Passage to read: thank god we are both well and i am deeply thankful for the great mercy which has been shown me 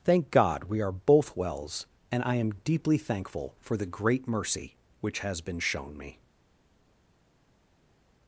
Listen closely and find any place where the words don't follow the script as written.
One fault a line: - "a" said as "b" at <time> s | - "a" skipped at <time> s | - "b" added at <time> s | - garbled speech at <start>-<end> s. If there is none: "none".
- "well" said as "wells" at 1.4 s